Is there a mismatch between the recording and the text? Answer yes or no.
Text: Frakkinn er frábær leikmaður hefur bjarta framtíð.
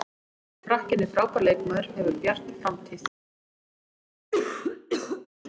no